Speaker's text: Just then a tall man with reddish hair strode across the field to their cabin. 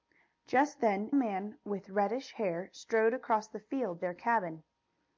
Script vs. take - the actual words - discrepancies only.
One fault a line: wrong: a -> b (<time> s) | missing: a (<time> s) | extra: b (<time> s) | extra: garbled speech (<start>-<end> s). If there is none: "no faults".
missing: a tall (1.1 s)
missing: to (4.0 s)